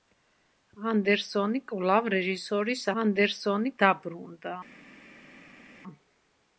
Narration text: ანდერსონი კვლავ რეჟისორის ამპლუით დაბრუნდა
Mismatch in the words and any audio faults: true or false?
true